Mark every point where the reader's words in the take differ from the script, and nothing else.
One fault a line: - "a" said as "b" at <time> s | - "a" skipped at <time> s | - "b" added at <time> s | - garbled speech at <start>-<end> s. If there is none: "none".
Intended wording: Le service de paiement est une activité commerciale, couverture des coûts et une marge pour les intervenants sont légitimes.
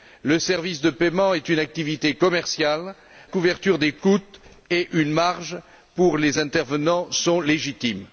none